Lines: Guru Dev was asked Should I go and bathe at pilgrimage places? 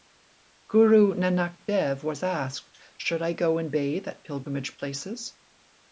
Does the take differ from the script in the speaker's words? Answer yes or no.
yes